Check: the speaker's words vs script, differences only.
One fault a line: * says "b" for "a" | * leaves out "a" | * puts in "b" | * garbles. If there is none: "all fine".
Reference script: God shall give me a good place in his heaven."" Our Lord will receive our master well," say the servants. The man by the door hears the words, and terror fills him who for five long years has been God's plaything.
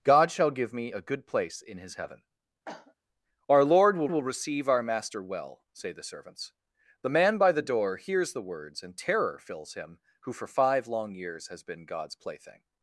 * puts in "will"